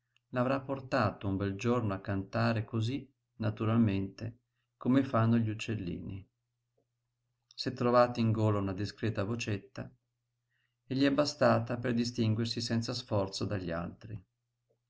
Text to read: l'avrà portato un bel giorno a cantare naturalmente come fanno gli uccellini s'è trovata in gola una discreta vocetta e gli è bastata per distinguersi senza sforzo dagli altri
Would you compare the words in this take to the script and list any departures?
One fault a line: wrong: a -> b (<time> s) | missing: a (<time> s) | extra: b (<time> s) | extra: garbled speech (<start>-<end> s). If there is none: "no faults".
extra: cosí (2.6 s)